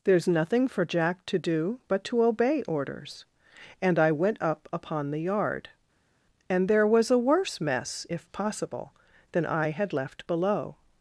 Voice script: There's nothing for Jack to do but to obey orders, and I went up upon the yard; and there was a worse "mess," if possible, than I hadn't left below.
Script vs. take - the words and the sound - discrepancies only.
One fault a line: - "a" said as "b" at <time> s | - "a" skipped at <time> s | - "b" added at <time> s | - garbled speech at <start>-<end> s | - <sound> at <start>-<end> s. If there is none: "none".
- "hadn't" said as "had" at 9.7 s